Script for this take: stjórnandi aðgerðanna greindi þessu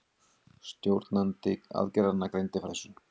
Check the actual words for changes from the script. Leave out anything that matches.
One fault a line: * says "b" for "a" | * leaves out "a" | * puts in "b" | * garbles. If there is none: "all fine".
all fine